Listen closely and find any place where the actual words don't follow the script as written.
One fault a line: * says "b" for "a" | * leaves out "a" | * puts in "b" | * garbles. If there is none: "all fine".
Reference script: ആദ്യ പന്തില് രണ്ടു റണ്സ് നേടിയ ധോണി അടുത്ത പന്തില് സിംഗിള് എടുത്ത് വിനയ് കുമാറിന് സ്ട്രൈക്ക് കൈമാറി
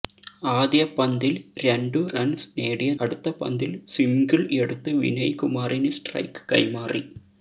* leaves out "ധോണി"